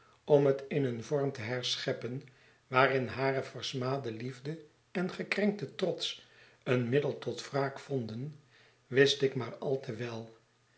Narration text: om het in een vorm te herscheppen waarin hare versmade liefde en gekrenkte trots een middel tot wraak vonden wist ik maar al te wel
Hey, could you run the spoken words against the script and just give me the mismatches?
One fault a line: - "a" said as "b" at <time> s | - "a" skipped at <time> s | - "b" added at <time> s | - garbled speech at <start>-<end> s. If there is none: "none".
none